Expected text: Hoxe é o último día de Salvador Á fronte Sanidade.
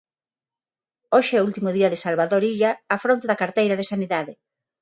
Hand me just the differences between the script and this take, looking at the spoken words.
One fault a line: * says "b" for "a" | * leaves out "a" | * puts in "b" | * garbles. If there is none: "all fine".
* puts in "Illa"
* puts in "da carteira de"